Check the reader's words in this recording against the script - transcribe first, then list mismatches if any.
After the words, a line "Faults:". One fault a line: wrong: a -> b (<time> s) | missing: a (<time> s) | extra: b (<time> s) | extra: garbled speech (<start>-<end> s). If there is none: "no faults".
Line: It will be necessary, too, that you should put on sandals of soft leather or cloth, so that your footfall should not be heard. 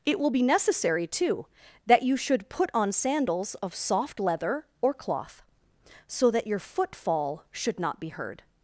It will be necessary, too, that you should put on sandals of soft leather or cloth, so that your footfall should not be heard.
Faults:
no faults